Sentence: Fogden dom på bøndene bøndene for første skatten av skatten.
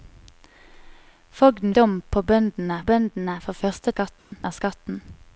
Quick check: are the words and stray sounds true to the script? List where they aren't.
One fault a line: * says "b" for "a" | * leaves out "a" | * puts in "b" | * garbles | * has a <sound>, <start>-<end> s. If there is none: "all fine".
* has a dropout, 4.2-4.3 s